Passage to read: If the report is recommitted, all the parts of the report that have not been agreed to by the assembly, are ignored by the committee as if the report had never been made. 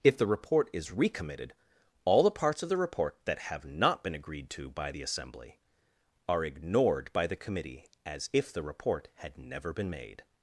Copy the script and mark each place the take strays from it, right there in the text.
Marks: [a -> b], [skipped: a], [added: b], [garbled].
If the report is recommitted, all the parts of the report that have not been agreed to by the assembly, are ignored by the committee as if the report had never been made.